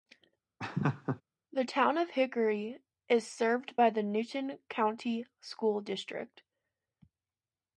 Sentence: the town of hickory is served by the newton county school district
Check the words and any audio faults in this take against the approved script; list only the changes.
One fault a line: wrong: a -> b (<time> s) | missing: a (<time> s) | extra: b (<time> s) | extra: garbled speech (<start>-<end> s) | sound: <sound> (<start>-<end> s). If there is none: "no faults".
sound: laugh (0.6-1.2 s)